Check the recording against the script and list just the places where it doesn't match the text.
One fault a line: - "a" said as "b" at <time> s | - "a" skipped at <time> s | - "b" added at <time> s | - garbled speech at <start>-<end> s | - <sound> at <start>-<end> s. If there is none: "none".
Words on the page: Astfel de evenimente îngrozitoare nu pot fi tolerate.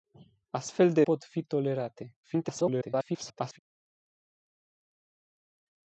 - "evenimente îngrozitoare nu" skipped at 1.0 s
- garbled speech at 2.2-3.6 s